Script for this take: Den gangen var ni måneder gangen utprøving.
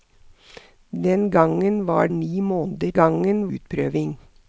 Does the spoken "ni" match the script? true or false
true